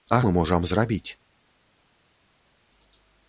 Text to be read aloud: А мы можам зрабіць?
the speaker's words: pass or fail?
pass